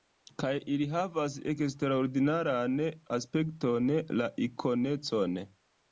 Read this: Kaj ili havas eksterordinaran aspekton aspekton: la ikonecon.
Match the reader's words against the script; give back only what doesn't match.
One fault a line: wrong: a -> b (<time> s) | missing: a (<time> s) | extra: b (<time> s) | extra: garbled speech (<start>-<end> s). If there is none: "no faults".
missing: aspekton (3.9 s)